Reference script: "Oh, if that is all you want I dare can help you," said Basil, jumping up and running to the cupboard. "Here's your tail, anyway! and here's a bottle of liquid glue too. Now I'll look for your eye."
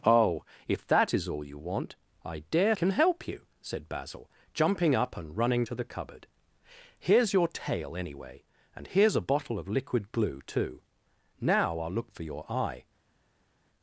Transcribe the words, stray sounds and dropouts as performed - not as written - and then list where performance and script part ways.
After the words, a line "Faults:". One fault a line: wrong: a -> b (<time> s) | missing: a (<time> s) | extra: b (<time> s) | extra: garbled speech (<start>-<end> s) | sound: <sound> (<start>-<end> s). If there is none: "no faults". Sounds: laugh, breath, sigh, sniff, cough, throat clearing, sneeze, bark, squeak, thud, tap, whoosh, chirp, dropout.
"Oh, if that is all you want I dare can help you," said Basil, jumping up and running to the cupboard. "Here's your tail, anyway! and here's a bottle of liquid glue too. Now I'll look for your eye."
Faults:
no faults